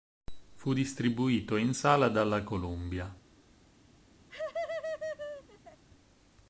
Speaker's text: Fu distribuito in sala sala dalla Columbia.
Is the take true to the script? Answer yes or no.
no